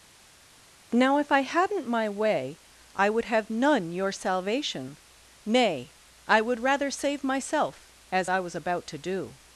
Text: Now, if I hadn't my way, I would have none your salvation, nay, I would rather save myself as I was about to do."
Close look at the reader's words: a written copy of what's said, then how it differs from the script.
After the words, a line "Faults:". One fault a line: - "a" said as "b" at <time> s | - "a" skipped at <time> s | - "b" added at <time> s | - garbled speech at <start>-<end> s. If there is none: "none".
Now, if I hadn't my way, I would have none your salvation, nay, I would rather save myself as I was about to do."
Faults:
none